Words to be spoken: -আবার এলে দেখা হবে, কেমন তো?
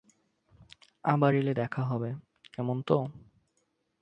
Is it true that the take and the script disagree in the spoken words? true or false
false